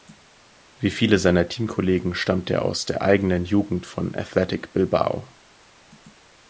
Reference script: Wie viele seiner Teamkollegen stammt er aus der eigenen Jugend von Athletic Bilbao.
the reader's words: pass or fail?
pass